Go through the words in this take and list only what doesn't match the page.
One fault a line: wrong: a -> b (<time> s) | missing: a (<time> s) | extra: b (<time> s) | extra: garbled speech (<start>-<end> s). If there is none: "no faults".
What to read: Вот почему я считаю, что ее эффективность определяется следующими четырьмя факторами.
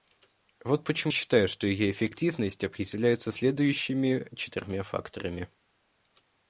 missing: я (1.1 s)